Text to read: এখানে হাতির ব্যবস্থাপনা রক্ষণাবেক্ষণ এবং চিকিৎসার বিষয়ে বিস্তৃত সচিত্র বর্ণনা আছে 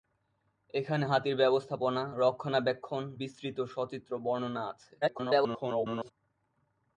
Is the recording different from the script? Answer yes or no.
yes